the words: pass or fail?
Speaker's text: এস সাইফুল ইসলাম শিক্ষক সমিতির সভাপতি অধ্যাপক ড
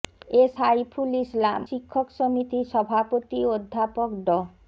pass